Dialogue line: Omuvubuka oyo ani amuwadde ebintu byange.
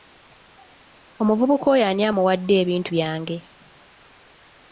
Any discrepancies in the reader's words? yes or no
no